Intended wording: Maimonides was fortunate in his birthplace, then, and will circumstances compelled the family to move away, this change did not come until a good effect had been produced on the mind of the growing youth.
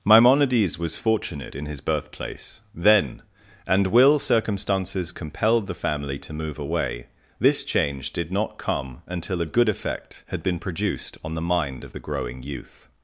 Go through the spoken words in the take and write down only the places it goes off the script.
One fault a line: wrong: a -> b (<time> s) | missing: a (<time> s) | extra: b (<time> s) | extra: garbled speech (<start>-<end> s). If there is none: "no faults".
no faults